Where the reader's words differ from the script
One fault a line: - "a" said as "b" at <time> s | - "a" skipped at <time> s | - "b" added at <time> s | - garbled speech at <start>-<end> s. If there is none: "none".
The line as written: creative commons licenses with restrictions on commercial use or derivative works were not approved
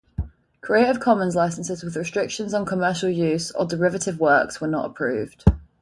none